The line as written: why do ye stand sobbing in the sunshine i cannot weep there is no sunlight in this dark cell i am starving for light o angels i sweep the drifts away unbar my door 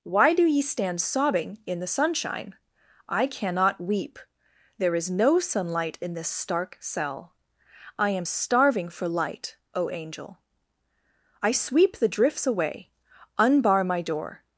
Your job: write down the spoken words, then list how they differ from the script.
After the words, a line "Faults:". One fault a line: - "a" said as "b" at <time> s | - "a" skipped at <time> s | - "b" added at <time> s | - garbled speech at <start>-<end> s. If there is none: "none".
why do ye stand sobbing in the sunshine i cannot weep there is no sunlight in this stark cell i am starving for light o angel i sweep the drifts away unbar my door
Faults:
- "dark" said as "stark" at 6.3 s
- "angels" said as "angel" at 9.9 s